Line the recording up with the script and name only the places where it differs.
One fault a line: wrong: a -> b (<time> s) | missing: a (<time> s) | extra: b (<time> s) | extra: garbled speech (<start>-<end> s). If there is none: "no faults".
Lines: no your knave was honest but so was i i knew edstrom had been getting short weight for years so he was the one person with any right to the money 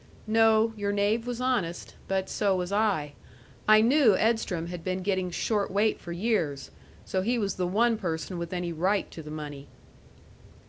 no faults